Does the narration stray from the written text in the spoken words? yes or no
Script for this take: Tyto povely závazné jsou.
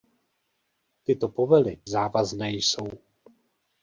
no